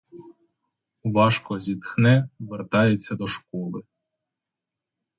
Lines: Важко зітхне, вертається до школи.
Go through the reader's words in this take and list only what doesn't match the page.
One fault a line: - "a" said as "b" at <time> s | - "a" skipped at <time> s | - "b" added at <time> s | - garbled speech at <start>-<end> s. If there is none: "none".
none